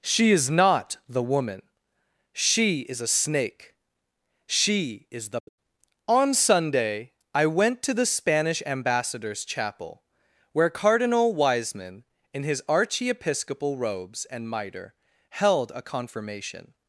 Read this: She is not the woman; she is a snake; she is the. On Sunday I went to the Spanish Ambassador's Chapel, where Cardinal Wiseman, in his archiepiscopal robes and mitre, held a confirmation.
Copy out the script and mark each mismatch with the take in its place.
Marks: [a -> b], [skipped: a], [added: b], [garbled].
She is not the woman; she is a snake; she is the. On Sunday I went to the Spanish Ambassador's Chapel, where Cardinal Wiseman, in his archiepiscopal robes and mitre, held a confirmation.